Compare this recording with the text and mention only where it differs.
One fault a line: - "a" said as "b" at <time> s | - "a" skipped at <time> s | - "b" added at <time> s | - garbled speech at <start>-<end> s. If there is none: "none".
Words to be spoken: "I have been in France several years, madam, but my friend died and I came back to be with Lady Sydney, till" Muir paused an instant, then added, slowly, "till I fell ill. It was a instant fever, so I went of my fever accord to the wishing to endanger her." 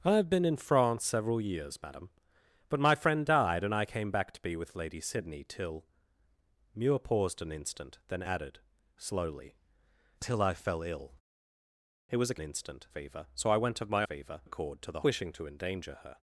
none